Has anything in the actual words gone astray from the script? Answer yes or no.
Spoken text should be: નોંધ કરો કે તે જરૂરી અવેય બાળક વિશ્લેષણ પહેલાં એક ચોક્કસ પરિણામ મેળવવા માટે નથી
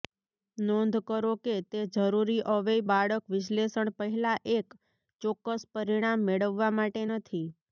no